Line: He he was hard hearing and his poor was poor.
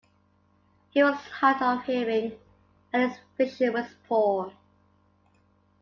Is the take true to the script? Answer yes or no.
no